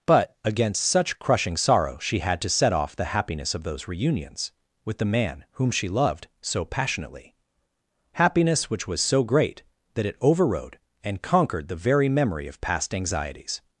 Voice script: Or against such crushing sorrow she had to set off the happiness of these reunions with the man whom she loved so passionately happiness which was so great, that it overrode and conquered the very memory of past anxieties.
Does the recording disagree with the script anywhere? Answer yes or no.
yes